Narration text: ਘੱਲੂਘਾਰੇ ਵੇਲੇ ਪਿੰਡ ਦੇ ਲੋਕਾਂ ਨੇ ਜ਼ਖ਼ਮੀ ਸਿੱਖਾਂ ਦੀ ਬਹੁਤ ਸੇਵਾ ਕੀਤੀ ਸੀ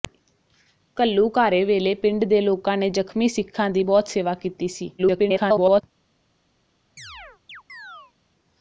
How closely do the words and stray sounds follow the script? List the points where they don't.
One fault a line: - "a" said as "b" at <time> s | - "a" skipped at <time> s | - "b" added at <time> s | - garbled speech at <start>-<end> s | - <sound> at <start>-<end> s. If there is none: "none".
- garbled speech at 5.0-5.8 s
- chirp at 7.0-8.1 s